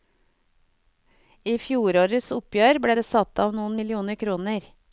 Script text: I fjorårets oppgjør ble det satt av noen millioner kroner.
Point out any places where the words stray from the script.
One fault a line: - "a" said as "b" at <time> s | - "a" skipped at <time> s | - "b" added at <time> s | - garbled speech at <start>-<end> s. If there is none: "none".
none